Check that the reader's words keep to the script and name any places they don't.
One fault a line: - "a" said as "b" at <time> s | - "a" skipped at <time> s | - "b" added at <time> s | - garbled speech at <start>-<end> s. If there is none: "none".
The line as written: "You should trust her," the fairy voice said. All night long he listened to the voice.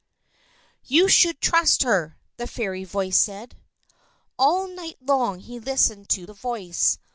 none